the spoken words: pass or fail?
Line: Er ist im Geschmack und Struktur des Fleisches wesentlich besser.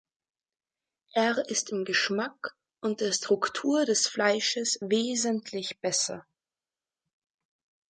fail